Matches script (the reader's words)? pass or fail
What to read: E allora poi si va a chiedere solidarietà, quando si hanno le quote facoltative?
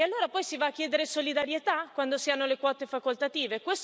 pass